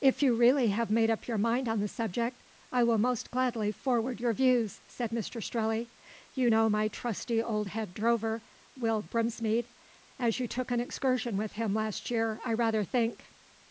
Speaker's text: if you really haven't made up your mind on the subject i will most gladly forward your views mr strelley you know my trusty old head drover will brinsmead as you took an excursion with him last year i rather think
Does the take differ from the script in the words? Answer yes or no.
yes